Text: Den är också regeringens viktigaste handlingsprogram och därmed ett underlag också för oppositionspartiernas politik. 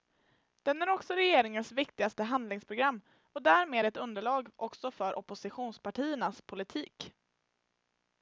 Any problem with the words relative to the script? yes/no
no